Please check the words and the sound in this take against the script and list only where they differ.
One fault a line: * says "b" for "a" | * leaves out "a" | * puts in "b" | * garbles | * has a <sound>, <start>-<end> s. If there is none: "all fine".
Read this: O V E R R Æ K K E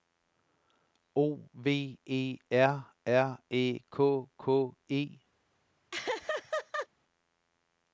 * has a laugh, 5.9-6.9 s